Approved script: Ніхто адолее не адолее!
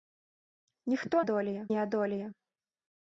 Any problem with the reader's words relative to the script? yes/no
no